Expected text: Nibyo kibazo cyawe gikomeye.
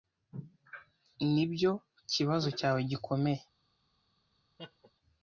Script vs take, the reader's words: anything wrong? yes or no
no